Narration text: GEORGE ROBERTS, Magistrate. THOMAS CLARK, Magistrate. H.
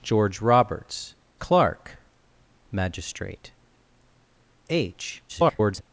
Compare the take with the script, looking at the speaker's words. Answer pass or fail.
fail